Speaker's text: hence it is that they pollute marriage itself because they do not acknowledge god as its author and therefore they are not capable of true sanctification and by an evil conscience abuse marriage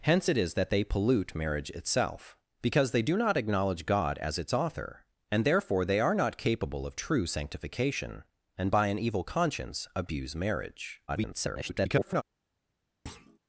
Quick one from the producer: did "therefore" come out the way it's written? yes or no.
yes